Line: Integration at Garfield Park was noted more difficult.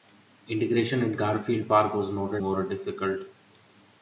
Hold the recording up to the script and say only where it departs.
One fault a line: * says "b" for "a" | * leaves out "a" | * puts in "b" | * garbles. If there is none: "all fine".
all fine